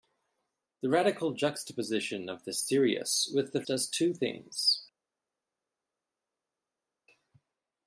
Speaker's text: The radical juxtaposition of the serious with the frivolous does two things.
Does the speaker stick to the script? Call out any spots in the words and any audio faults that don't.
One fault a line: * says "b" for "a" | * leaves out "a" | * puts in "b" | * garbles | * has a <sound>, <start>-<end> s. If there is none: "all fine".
* leaves out "frivolous"